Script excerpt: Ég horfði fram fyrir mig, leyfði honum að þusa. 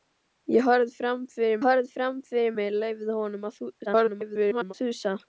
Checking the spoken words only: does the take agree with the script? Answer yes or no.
no